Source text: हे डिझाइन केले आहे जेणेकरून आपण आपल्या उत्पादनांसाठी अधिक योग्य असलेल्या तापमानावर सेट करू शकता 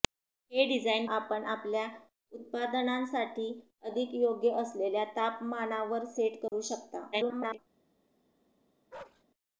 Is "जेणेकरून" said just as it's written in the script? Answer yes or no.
no